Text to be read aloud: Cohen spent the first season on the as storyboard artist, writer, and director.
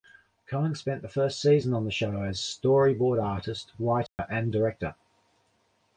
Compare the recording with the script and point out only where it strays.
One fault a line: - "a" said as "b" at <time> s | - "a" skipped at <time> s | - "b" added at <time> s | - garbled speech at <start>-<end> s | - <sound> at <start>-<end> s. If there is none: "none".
- "show" added at 1.9 s
- dropout at 4.1-4.2 s